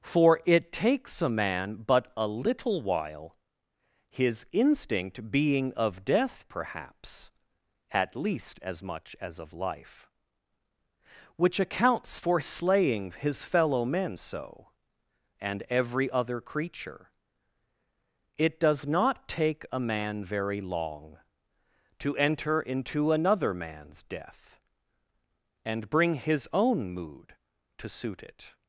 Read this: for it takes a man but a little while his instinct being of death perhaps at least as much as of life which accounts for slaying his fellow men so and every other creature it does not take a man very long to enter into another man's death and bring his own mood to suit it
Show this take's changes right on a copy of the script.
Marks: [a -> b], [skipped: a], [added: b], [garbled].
for it takes a man but a little while his instinct being of death perhaps at least as much as of life which accounts for slaying his fellow men so and every other creature it does not take a man very long to enter into another man's death and bring his own mood to suit it